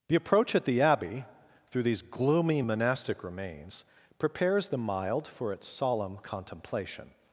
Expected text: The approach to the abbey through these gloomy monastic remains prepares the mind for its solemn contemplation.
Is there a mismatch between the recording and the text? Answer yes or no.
yes